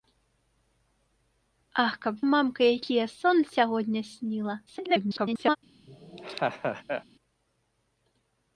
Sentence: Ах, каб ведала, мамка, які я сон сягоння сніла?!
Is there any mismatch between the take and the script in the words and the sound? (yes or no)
yes